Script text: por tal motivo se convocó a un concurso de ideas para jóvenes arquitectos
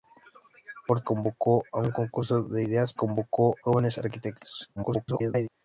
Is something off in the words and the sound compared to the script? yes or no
yes